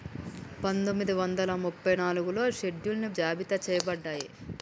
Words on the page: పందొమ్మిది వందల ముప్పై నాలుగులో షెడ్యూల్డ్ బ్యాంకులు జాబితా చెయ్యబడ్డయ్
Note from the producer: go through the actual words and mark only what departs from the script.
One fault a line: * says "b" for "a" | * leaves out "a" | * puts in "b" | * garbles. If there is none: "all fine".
* leaves out "బ్యాంకులు"